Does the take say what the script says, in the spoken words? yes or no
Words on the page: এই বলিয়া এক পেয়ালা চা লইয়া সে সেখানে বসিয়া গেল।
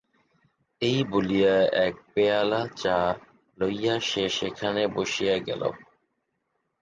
yes